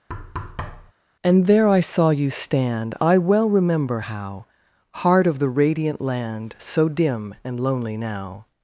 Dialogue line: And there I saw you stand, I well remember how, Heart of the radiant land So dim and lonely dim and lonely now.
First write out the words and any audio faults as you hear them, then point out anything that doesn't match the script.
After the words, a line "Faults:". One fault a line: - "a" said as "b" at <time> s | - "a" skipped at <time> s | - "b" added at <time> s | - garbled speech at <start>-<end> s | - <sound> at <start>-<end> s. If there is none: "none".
And there I saw you stand, I well remember how, Heart of the radiant land So dim and lonely now.
Faults:
- thud at 0.1-0.9 s
- "dim and lonely" skipped at 7.9 s